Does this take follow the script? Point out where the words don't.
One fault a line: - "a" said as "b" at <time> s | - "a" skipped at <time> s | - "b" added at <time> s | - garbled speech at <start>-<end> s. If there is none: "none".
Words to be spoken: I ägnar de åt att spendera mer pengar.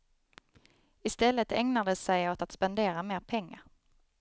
- "stället" added at 1.1 s
- "sig" added at 1.9 s